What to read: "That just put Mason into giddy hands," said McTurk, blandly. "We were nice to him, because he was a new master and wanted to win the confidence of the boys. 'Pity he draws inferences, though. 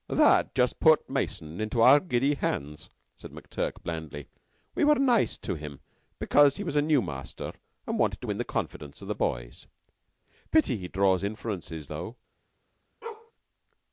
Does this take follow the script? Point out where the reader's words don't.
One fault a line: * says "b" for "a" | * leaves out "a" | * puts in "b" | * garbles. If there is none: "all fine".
* puts in "our"